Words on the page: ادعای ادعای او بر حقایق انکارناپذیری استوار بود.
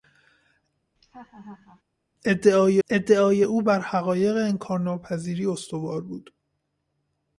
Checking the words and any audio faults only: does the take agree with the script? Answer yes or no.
no